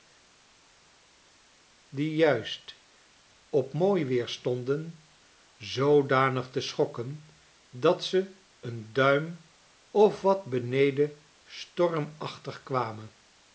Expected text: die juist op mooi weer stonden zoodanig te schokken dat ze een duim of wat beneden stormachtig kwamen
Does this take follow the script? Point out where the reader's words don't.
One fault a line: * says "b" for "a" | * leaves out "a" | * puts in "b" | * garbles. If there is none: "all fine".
all fine